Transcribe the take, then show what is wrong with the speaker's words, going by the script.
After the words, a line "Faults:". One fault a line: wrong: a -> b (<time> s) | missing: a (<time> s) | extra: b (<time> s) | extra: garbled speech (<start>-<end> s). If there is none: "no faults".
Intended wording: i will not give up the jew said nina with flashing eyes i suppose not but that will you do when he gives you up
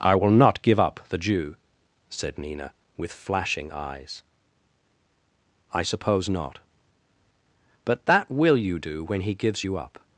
i will not give up the jew said nina with flashing eyes i suppose not but that will you do when he gives you up
Faults:
no faults